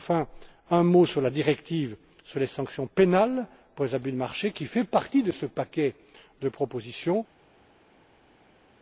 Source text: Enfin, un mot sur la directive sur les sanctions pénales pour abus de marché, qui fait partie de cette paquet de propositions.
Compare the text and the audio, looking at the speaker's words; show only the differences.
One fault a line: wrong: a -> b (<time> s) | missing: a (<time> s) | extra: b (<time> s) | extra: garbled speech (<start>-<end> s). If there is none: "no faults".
extra: les (3.8 s)
wrong: cette -> ce (5.3 s)